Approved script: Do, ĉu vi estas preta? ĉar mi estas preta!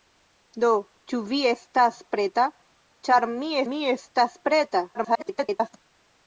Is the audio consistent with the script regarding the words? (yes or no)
no